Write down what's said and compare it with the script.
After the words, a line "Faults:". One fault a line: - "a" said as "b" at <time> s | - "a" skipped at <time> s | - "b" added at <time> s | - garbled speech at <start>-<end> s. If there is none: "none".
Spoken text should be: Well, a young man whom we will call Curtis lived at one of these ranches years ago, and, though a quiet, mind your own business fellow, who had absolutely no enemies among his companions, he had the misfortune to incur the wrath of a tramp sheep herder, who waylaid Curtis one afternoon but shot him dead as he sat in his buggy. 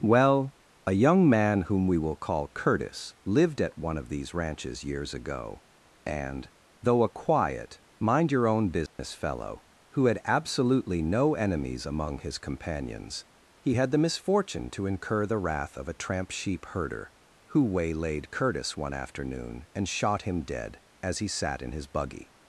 Well, a young man whom we will call Curtis lived at one of these ranches years ago, and, though a quiet, mind your own business fellow, who had absolutely no enemies among his companions, he had the misfortune to incur the wrath of a tramp sheep herder, who waylaid Curtis one afternoon and shot him dead as he sat in his buggy.
Faults:
- "but" said as "and" at 19.8 s